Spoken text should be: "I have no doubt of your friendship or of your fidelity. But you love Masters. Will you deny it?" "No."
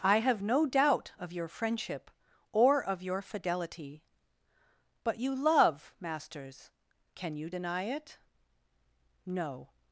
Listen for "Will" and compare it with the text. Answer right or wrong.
wrong